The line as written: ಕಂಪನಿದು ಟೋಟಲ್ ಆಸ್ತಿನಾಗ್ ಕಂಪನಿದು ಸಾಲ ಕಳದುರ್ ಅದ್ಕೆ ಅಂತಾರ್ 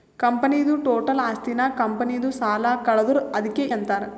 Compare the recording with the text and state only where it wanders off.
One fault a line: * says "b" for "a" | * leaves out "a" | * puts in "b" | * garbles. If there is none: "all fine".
all fine